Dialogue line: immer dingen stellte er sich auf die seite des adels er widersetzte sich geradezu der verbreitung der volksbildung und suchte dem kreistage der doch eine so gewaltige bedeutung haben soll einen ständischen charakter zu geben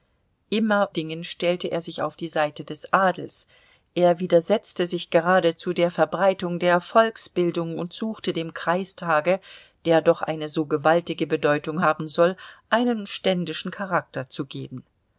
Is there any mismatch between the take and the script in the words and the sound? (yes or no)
no